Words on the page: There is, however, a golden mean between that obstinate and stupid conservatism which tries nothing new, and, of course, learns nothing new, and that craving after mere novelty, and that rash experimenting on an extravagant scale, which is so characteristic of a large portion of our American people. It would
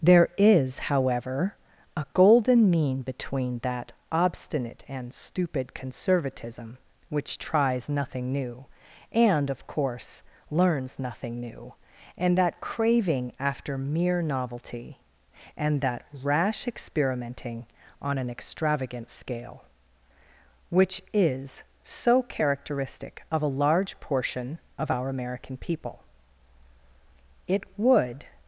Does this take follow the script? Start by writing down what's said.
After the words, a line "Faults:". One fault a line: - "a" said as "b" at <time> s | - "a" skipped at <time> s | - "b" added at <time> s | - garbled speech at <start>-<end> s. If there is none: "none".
There is, however, a golden mean between that obstinate and stupid conservatism which tries nothing new, and, of course, learns nothing new, and that craving after mere novelty, and that rash experimenting on an extravagant scale, which is so characteristic of a large portion of our American people. It would
Faults:
none